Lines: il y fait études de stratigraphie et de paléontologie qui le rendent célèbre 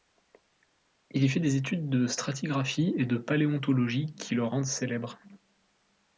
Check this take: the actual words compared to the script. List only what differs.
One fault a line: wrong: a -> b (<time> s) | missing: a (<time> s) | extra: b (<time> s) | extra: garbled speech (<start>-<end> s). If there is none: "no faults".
extra: des (1.4 s)